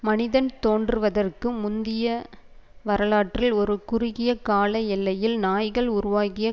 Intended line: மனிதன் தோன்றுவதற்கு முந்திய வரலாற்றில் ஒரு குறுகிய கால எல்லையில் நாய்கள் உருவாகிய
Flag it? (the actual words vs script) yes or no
no